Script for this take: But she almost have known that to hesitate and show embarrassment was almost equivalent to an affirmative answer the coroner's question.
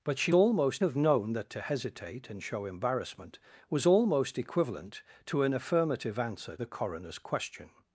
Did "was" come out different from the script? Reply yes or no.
no